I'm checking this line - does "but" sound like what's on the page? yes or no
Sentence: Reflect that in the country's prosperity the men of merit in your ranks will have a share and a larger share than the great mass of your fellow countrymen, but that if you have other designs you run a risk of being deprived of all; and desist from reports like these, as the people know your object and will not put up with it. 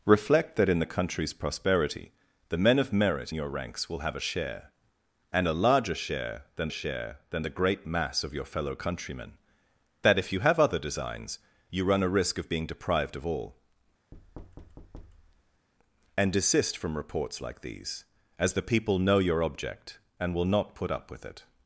no